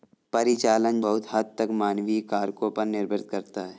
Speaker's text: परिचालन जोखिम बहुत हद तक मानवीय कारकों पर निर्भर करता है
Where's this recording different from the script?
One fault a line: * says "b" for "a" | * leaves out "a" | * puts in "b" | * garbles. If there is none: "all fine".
* leaves out "जोखिम"